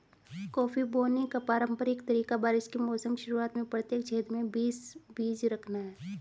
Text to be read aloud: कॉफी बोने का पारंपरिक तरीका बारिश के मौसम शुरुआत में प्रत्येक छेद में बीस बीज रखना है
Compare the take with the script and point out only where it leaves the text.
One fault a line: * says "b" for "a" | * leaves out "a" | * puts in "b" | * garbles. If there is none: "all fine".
all fine